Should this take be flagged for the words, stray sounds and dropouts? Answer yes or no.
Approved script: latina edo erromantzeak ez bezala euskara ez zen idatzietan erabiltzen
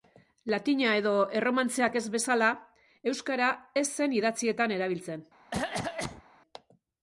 yes